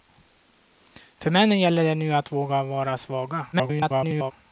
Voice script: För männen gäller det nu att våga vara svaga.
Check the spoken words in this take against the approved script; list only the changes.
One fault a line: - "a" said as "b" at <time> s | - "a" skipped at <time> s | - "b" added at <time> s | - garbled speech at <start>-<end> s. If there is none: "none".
- garbled speech at 3.5-4.3 s